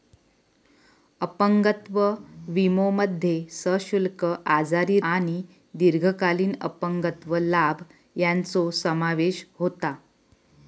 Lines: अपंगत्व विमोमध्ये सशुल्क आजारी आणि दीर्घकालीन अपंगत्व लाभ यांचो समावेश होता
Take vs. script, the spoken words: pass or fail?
pass